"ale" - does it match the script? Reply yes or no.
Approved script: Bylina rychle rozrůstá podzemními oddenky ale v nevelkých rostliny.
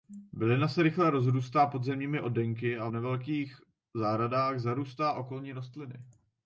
no